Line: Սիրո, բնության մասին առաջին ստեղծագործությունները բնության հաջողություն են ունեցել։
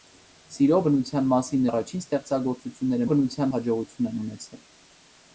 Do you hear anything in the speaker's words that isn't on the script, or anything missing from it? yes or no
no